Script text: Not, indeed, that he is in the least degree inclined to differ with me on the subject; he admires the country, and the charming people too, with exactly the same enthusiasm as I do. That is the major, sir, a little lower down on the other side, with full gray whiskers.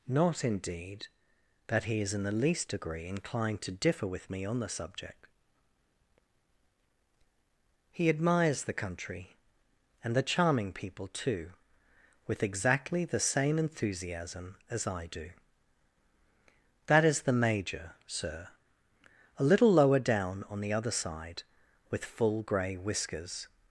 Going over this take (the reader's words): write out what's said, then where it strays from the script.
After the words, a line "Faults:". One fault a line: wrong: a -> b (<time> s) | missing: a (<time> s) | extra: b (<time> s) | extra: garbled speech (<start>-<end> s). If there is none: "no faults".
Not, indeed, that he is in the least degree inclined to differ with me on the subject; he admires the country, and the charming people too, with exactly the same enthusiasm as I do. That is the major, sir, a little lower down on the other side, with full gray whiskers.
Faults:
no faults